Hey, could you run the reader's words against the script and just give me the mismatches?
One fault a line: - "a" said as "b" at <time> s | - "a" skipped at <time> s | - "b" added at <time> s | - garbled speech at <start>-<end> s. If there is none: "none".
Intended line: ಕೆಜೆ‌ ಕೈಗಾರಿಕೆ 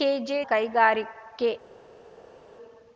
none